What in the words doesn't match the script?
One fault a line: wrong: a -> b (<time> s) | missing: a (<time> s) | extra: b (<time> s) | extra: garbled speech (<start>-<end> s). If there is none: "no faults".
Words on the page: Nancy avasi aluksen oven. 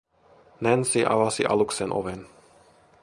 no faults